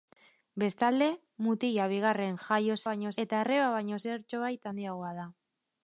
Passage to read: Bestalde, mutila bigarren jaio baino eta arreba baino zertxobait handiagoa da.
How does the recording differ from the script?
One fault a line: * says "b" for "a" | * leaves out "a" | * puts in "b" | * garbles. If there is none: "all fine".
all fine